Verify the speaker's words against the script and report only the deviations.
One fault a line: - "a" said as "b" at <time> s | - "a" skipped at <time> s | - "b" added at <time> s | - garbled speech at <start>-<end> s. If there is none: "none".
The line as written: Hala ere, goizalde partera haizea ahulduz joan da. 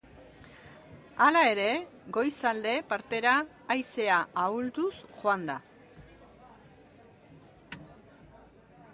none